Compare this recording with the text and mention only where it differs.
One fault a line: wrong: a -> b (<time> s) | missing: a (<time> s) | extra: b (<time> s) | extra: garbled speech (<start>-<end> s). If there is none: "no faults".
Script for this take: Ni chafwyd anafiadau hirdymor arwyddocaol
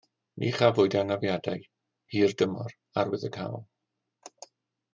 no faults